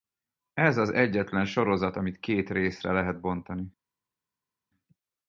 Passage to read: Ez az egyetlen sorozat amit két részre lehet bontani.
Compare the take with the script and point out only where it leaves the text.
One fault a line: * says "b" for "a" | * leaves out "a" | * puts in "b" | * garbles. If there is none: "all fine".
all fine